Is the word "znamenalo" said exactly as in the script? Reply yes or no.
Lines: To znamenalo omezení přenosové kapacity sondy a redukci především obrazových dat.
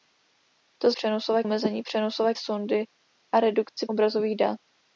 no